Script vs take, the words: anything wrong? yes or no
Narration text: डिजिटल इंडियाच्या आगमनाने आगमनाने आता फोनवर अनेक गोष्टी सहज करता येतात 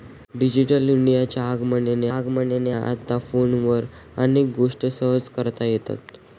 no